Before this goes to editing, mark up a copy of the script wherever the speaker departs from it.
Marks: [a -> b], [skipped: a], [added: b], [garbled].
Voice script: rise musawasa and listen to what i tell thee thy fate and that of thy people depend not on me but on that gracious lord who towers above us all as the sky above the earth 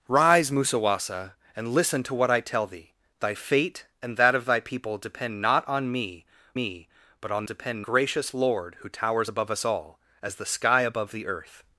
rise musawasa and listen to what i tell thee thy fate and that of thy people depend not on me [added: me] but on [that -> depend] gracious lord who towers above us all as the sky above the earth